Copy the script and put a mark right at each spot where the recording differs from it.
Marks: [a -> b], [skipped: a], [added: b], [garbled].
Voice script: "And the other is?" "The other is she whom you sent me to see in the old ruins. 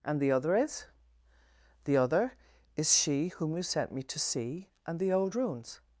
"And the other is?" "The other is she whom you sent me to see [in -> and] the old ruins.